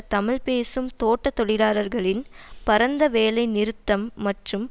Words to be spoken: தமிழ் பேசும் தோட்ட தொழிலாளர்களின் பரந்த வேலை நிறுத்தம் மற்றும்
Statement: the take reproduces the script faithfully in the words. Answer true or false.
true